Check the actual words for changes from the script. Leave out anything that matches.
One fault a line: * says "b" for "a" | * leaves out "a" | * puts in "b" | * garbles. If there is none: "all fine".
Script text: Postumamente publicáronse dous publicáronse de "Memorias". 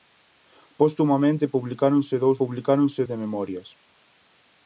all fine